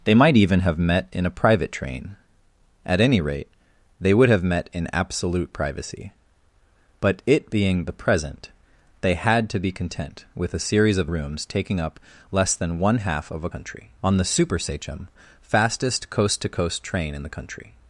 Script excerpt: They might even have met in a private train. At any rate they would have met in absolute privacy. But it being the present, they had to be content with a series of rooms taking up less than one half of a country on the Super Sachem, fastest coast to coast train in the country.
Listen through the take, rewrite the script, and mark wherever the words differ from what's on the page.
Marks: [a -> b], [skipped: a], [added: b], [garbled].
They might even have met in a private train. At any rate they would have met in absolute privacy. But it being the present, they had to be content with a series of rooms taking up less than one half of a country on the Super Sachem, fastest coast to coast train in the country.